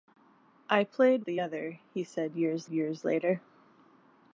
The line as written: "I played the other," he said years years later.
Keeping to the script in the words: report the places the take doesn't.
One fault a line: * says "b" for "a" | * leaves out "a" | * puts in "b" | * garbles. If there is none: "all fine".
all fine